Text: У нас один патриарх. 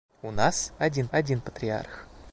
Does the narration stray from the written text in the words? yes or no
yes